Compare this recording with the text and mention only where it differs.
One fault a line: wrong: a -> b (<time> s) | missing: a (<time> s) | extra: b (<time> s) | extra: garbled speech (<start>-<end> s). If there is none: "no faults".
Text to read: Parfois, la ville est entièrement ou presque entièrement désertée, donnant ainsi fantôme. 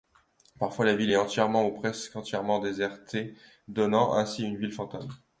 extra: une ville (4.4 s)